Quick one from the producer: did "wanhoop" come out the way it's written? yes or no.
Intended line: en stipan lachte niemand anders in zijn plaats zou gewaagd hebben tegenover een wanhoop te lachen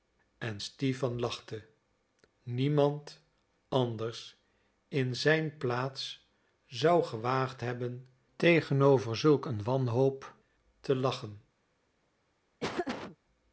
yes